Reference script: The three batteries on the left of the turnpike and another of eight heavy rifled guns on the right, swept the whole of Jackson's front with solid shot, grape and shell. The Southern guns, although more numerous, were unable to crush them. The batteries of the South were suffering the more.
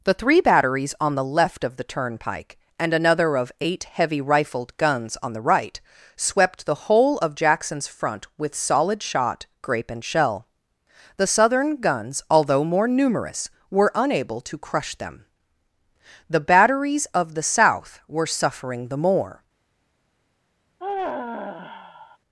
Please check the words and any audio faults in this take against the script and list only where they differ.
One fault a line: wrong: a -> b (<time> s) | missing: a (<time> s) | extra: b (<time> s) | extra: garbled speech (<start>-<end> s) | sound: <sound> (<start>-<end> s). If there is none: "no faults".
sound: sigh (20.8-22.2 s)